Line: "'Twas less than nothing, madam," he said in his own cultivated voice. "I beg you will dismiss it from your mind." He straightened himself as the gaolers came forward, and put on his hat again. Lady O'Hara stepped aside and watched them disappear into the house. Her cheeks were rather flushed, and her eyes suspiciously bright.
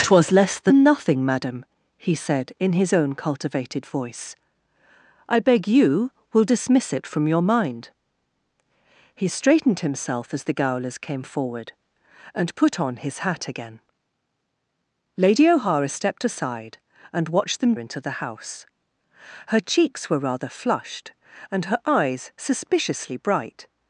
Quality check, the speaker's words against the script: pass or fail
fail